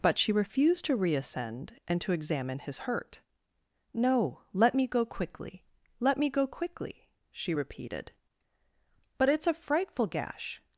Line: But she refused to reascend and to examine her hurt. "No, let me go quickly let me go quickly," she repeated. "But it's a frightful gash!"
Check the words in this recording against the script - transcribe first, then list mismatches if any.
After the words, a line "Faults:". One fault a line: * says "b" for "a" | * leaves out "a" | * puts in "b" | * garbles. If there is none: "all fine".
But she refused to reascend and to examine his hurt. "No, let me go quickly let me go quickly," she repeated. "But it's a frightful gash!"
Faults:
* says "his" for "her"